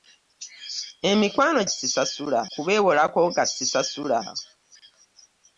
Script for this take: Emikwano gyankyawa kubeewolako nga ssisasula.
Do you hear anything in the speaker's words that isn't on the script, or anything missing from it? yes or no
yes